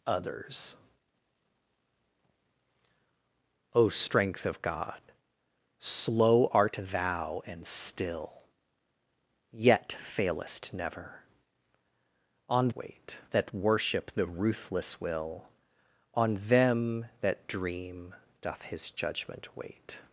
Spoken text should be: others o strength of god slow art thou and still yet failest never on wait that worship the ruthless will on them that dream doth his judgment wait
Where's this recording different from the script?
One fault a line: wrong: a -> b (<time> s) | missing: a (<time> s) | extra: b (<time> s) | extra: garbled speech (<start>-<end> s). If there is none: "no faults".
no faults